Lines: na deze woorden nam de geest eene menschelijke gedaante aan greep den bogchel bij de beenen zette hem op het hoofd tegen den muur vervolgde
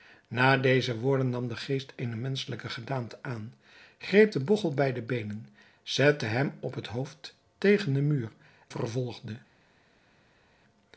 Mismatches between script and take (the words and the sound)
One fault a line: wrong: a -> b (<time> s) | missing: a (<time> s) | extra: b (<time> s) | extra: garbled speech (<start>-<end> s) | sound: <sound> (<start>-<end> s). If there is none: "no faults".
no faults